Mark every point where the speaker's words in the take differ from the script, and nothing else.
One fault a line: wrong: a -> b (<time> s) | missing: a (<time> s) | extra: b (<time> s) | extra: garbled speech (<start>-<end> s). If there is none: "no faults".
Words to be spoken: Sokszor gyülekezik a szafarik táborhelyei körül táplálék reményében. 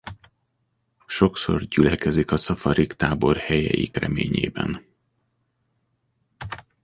missing: körül táplálék (3.9 s)